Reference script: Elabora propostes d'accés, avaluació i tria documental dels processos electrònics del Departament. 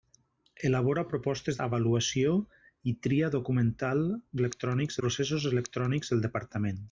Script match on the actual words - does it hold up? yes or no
no